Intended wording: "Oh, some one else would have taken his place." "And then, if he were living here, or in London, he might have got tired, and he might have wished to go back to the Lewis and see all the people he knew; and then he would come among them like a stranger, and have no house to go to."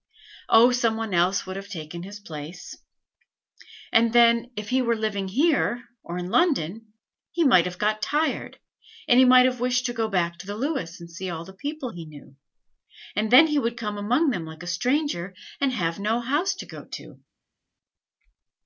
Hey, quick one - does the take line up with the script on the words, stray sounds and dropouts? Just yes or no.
yes